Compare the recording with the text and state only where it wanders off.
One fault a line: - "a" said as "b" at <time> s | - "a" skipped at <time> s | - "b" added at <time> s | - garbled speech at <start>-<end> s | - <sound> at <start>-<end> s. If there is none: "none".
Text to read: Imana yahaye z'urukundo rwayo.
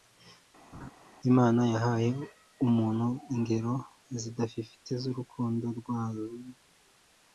- laugh at 0.7-0.9 s
- "umuntu ingero zidafifitse" added at 2.7 s